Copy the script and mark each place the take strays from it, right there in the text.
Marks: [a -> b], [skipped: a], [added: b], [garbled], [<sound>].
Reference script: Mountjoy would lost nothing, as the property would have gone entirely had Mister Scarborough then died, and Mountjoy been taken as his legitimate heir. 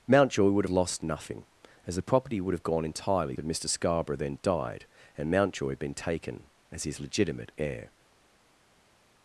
Mountjoy would lost nothing, as the property would have gone entirely had Mister Scarborough then died, and Mountjoy been taken as his legitimate heir.